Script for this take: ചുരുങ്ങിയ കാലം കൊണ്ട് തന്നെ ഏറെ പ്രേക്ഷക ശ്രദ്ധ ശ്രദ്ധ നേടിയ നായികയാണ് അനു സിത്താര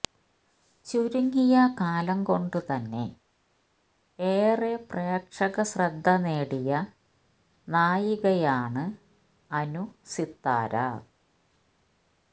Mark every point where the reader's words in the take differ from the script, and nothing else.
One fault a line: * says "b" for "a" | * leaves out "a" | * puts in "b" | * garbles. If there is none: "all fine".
* leaves out "ശ്രദ്ധ"